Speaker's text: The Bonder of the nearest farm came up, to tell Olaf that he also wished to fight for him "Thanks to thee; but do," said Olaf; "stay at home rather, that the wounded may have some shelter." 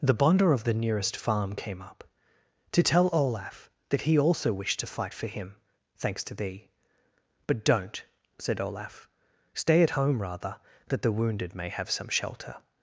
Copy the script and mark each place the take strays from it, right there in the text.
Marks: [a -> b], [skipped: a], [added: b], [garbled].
The Bonder of the nearest farm came up, to tell Olaf that he also wished to fight for him "Thanks to thee; but [do," -> don't] said Olaf; "stay at home rather, that the wounded may have some shelter."